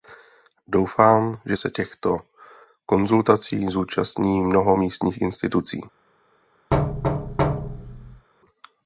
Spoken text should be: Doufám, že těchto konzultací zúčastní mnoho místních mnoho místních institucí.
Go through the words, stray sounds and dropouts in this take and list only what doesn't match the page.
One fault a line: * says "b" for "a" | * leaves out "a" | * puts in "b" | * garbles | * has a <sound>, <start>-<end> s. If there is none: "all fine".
* puts in "se"
* leaves out "mnoho místních"
* has a thud, 6.7-8.3 s